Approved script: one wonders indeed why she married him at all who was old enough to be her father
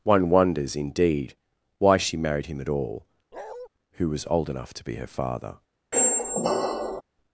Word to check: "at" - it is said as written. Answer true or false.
true